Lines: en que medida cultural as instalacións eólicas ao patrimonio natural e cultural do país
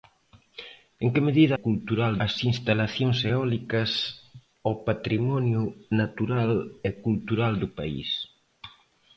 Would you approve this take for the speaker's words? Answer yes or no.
yes